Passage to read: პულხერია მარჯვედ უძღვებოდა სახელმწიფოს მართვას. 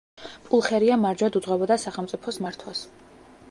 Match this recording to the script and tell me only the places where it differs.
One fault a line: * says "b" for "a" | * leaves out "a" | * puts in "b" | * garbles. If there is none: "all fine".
all fine